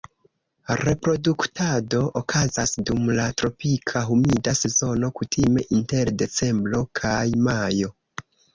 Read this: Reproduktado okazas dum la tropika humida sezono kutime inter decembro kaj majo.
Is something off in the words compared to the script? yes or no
no